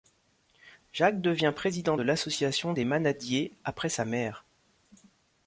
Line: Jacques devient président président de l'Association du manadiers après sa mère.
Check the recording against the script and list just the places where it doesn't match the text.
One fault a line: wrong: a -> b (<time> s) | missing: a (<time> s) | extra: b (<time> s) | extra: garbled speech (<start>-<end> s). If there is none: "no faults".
missing: président (1.9 s)
wrong: du -> des (2.7 s)